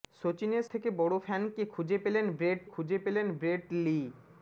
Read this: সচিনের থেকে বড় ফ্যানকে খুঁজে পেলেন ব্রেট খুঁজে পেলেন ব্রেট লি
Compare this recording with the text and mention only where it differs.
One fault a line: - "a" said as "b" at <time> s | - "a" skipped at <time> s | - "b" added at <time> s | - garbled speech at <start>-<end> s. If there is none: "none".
none